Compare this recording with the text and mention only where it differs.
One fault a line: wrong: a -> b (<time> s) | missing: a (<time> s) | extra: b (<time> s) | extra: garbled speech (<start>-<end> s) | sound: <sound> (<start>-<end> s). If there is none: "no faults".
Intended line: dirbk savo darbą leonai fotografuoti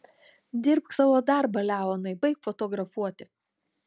extra: baik (2.3 s)